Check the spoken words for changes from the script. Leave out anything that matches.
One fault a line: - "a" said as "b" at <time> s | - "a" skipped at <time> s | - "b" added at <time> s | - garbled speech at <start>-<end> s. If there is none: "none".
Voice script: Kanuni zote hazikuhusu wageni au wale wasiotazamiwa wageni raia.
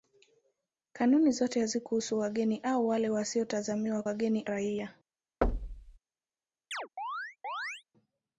none